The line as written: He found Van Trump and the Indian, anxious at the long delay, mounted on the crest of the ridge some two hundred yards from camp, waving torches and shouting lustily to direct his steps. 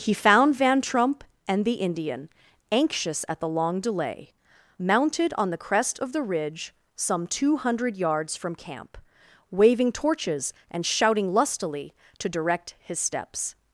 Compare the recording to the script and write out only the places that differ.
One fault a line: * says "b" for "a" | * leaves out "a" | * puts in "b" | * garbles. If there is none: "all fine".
all fine